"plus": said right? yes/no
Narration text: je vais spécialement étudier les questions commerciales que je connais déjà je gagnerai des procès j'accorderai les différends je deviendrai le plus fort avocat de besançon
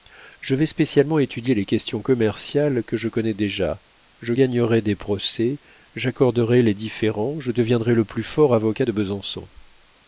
yes